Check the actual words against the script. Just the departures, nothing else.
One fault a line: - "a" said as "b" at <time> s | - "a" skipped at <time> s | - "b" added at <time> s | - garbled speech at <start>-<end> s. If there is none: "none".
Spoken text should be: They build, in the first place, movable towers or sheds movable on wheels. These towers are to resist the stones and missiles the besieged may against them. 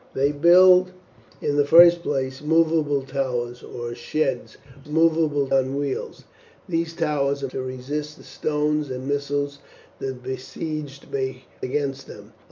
none